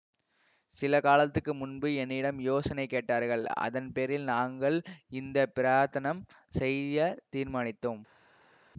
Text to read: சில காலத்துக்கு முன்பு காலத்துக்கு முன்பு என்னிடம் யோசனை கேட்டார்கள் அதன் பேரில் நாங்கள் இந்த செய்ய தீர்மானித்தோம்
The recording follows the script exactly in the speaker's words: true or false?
false